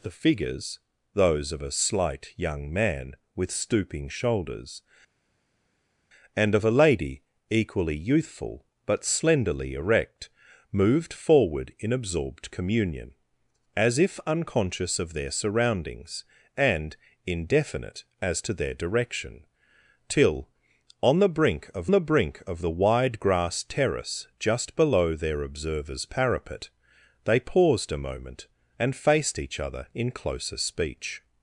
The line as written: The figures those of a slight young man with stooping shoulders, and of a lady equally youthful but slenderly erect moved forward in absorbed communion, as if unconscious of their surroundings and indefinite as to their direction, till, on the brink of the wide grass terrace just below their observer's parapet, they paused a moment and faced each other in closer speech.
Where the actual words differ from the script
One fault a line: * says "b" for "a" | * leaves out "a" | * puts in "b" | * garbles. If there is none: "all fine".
* puts in "brink of the"